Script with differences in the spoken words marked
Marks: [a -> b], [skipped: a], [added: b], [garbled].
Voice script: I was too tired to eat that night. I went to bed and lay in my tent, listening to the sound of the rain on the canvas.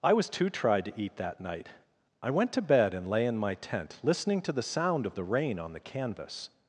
I was too [tired -> tried] to eat that night. I went to bed and lay in my tent, listening to the sound of the rain on the canvas.